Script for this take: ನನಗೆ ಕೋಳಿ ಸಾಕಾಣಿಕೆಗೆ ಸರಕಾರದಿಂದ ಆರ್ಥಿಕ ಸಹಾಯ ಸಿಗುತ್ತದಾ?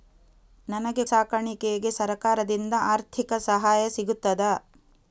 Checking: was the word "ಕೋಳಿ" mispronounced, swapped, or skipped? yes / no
yes